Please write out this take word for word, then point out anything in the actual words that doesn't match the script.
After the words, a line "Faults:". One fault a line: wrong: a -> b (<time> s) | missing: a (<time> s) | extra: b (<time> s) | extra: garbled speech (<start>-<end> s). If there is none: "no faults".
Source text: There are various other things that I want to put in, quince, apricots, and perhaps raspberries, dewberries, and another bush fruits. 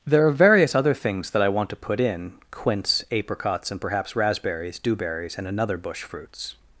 There are various other things that I want to put in, quince, apricots, and perhaps raspberries, dewberries, and another bush fruits.
Faults:
no faults